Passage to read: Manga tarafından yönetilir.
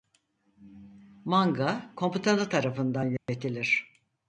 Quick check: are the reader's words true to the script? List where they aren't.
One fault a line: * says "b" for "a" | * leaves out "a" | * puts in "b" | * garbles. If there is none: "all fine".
* puts in "komutanı"